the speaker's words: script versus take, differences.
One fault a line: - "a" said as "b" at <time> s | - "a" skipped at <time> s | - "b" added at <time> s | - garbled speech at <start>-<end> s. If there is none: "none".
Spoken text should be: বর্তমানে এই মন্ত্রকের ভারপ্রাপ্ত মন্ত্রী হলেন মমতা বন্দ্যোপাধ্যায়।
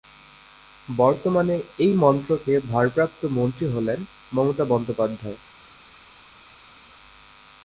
none